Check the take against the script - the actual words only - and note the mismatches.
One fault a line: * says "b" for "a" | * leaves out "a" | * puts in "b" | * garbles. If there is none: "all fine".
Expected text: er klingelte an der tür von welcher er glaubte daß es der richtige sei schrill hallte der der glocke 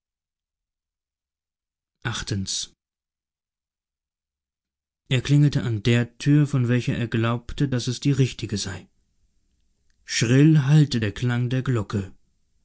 * says "die" for "der"
* puts in "klang"